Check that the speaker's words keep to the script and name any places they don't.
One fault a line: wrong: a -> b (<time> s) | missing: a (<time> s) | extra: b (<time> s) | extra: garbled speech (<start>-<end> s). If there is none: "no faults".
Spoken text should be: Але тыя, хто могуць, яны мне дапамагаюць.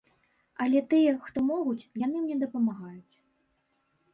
no faults